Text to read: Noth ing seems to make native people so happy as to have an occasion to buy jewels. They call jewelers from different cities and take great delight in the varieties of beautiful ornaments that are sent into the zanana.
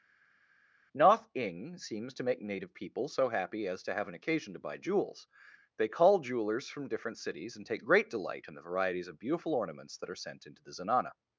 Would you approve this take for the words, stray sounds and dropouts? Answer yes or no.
yes